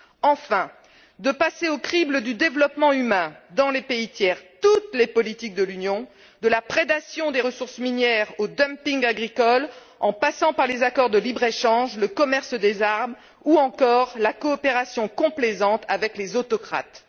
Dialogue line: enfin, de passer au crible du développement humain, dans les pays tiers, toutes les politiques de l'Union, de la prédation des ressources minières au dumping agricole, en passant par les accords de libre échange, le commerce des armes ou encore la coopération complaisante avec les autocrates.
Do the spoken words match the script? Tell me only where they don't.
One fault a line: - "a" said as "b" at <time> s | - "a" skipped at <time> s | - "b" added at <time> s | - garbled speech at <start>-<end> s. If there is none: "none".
none